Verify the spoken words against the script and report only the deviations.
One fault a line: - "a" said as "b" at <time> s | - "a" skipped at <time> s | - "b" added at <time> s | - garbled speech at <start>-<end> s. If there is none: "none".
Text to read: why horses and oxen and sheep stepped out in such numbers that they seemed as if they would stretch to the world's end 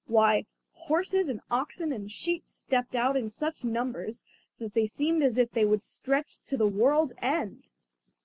none